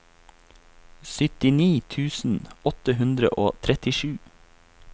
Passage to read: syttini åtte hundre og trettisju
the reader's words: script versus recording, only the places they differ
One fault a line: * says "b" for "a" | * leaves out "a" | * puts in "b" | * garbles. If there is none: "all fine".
* puts in "tusen"